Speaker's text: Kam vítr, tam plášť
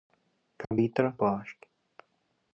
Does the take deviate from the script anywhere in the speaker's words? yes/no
yes